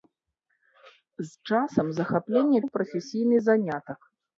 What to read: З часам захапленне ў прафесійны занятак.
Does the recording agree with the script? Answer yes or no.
yes